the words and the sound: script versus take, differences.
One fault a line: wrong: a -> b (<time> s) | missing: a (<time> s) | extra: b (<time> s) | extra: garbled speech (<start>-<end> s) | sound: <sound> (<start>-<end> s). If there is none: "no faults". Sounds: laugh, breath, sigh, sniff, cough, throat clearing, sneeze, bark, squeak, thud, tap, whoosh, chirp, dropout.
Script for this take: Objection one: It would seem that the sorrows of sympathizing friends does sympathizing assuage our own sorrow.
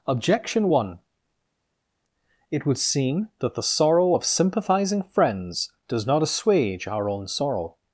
wrong: sorrows -> sorrow (3.6 s)
wrong: sympathizing -> not (6.1 s)